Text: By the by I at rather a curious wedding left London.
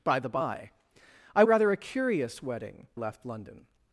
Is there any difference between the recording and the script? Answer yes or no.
no